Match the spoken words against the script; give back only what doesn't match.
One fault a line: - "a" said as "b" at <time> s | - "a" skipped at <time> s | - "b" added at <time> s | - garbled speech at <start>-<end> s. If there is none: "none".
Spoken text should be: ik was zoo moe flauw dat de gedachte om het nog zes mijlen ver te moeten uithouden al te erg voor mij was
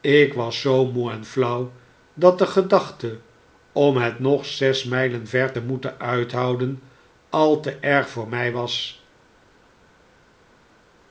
- "en" added at 1.1 s